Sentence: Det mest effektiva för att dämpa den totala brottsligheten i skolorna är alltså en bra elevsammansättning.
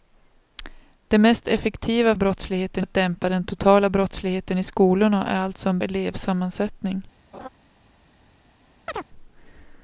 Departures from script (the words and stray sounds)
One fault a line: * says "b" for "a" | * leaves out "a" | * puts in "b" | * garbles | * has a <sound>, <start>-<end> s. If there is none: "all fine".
* says "brottsligheten" for "för"
* leaves out "bra"
* has a laugh, 7.3-7.5 s
* has a chirp, 8.9-9.1 s